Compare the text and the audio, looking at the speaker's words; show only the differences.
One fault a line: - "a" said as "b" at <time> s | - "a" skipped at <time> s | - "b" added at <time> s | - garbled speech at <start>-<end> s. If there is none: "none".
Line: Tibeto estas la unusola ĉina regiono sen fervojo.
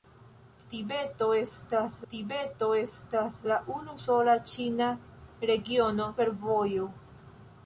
- "tibeto estas" added at 2.1 s
- "sen" skipped at 6.1 s